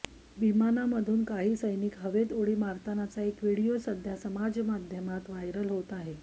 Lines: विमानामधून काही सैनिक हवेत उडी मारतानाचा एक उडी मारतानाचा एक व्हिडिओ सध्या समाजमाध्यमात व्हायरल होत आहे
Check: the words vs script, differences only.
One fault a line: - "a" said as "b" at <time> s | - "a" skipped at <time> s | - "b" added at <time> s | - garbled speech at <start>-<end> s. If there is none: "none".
- "उडी मारतानाचा एक" skipped at 3.4 s